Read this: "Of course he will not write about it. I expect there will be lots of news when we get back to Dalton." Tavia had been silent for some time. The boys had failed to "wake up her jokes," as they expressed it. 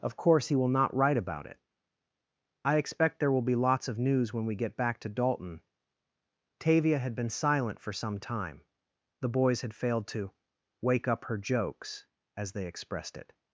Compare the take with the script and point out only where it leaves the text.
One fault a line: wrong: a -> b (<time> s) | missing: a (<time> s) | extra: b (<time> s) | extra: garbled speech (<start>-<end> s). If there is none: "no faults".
no faults